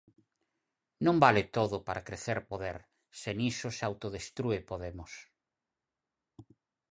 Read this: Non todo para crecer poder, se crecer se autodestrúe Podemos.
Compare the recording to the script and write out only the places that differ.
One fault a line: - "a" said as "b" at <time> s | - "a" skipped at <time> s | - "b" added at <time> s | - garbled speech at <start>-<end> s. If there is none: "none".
- "vale" added at 1.2 s
- "crecer" said as "niso" at 3.4 s